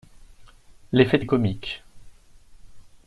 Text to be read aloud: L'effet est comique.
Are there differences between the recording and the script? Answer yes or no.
no